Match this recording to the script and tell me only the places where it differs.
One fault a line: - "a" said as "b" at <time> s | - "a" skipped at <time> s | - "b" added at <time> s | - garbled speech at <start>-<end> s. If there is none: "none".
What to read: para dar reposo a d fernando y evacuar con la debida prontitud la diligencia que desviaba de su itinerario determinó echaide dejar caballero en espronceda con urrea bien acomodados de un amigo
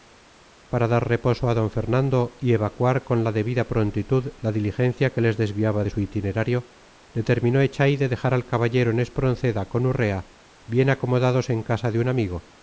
- "les" added at 5.2 s
- "al" added at 8.3 s
- "en casa" added at 11.5 s